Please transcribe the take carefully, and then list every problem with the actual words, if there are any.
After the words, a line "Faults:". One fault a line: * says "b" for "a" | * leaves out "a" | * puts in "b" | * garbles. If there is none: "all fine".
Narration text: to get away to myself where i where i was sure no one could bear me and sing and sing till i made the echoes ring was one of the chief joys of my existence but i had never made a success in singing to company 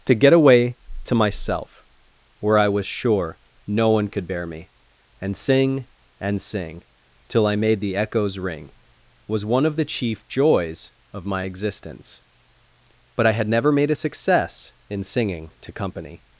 to get away to myself where i was sure no one could bear me and sing and sing till i made the echoes ring was one of the chief joys of my existence but i had never made a success in singing to company
Faults:
* leaves out "where i"